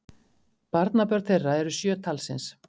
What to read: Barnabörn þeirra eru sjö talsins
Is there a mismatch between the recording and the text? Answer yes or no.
no